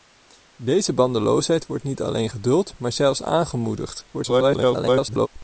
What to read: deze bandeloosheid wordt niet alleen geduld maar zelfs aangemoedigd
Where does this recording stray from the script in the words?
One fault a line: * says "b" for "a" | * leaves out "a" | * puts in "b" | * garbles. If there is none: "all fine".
* garbles